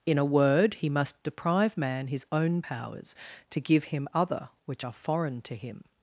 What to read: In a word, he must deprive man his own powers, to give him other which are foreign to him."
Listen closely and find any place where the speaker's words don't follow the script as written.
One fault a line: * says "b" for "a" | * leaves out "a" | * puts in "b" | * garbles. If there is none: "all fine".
all fine